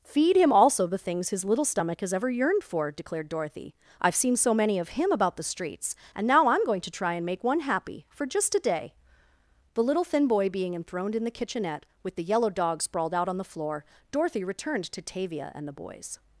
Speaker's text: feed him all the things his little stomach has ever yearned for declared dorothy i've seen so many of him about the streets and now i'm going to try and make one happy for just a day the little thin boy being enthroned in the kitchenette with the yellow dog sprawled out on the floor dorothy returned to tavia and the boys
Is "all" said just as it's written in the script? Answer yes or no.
no